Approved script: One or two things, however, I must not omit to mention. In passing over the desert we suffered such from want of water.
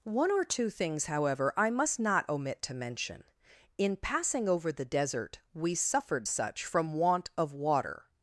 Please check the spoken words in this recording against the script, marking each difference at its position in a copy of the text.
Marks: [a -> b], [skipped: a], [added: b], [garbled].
One or two things, however, I must not omit to mention. In passing over the desert we suffered such from want of water.